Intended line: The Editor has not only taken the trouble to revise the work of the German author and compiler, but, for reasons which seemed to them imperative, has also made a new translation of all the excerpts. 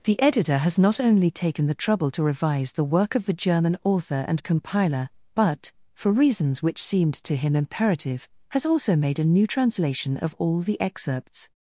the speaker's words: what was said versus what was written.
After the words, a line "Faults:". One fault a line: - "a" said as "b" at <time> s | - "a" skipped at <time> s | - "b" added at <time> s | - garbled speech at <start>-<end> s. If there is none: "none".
The Editor has not only taken the trouble to revise the work of the German author and compiler, but, for reasons which seemed to him imperative, has also made a new translation of all the excerpts.
Faults:
- "them" said as "him" at 7.3 s